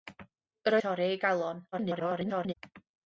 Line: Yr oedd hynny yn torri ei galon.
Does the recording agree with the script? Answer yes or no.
no